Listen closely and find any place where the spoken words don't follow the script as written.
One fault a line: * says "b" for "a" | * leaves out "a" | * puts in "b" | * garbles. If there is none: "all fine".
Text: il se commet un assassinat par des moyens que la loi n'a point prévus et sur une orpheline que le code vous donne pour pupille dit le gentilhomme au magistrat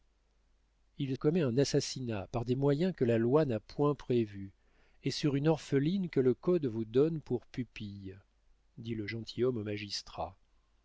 * leaves out "se"